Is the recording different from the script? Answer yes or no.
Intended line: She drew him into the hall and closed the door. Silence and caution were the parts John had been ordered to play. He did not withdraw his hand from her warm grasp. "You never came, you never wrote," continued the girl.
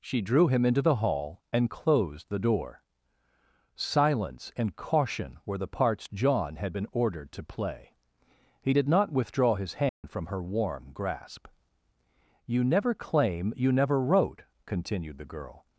yes